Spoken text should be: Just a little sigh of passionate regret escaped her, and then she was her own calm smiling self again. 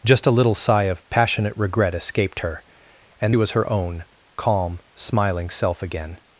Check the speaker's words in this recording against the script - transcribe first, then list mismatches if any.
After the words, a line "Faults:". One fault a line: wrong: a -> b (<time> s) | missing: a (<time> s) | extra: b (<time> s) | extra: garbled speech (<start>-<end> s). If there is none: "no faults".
Just a little sigh of passionate regret escaped her, and was her own calm smiling self again.
Faults:
missing: then she (3.3 s)